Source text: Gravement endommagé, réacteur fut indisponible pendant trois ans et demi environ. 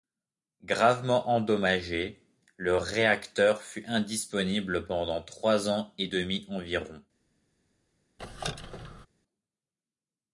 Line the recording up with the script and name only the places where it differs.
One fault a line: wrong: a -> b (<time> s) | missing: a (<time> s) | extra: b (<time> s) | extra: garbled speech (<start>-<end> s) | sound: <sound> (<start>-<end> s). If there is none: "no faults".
extra: le (2.6 s)
sound: squeak (8.2-9.1 s)